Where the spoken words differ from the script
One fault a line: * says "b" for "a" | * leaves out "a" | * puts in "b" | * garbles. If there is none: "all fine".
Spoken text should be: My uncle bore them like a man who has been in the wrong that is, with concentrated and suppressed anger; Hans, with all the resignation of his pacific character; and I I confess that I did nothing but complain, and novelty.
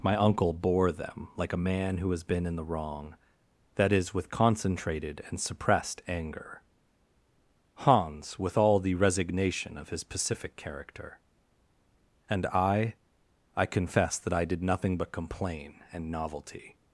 all fine